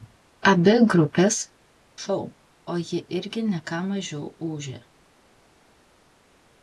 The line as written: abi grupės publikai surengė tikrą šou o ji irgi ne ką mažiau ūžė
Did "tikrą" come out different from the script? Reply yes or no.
yes